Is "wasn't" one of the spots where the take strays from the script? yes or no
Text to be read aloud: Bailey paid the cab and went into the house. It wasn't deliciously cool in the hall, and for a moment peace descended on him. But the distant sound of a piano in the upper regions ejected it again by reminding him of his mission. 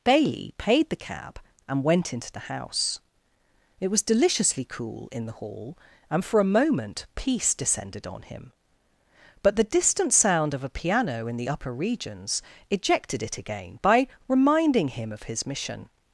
yes